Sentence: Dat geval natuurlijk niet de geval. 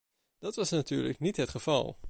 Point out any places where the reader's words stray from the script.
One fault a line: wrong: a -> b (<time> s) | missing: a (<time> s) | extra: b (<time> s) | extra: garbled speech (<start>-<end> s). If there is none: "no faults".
wrong: geval -> was (0.6 s)
wrong: de -> het (1.4 s)